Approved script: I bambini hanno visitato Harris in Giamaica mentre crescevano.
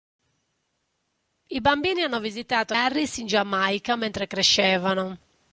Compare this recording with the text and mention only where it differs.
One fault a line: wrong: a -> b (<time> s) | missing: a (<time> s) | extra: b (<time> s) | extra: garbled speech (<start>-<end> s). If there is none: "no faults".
no faults